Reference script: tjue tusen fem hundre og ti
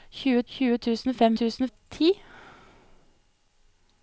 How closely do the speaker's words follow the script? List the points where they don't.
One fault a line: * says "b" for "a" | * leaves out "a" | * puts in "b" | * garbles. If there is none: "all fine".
* puts in "tjue"
* says "tusen" for "hundre"